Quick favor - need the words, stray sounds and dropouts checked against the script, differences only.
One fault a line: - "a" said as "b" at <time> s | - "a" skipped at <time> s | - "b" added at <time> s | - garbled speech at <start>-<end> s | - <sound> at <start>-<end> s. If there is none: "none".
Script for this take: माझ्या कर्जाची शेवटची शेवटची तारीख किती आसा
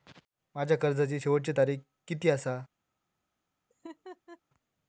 - "शेवटची" skipped at 1.5 s
- laugh at 3.7-4.4 s